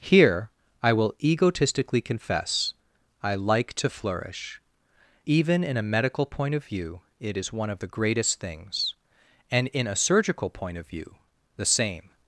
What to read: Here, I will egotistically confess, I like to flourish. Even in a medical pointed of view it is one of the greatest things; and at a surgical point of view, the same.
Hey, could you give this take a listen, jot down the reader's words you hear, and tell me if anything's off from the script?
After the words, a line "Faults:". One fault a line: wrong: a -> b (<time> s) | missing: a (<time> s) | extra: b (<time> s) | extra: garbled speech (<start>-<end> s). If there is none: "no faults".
Here, I will egotistically confess, I like to flourish. Even in a medical point of view it is one of the greatest things; and in a surgical point of view, the same.
Faults:
wrong: pointed -> point (6.2 s)
wrong: at -> in (9.7 s)